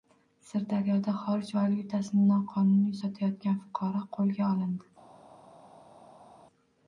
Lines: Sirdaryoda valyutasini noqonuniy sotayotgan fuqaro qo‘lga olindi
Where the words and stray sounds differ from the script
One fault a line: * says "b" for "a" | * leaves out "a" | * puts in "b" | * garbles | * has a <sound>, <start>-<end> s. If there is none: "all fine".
* puts in "xorij"